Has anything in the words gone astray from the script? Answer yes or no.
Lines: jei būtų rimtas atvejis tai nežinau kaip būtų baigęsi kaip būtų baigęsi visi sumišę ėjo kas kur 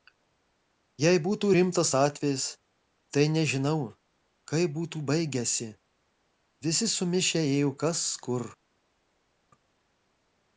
yes